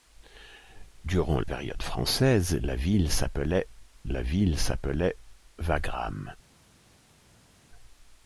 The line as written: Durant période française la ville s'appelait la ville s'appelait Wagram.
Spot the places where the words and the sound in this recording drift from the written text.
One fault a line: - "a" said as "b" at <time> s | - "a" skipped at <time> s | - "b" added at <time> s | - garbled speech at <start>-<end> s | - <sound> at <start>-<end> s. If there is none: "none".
none